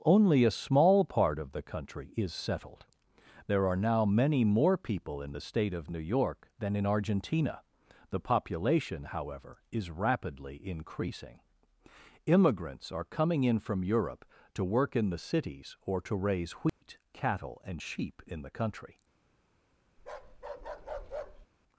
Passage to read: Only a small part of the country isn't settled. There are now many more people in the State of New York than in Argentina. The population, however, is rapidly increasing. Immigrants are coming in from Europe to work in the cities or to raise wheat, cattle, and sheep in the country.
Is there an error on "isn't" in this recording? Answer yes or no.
yes